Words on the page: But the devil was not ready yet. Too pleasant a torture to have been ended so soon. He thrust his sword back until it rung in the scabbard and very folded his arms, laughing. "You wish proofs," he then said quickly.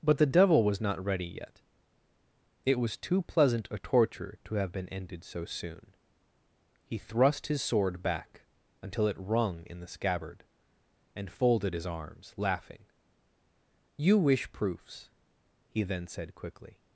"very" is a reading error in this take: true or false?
true